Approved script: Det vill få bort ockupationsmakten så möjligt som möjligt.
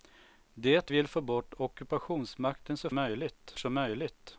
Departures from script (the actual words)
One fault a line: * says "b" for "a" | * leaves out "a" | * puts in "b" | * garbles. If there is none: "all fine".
all fine